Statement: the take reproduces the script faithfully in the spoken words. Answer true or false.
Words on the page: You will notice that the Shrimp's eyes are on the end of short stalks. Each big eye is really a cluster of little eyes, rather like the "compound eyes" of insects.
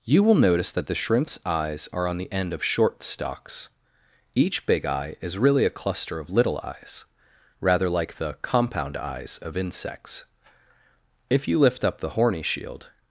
false